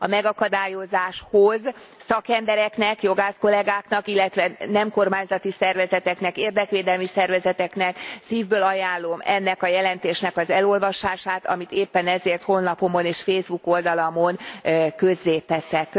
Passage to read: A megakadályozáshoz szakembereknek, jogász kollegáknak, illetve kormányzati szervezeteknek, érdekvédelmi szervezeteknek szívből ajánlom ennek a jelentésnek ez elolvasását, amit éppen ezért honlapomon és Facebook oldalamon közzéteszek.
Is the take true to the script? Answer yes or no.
no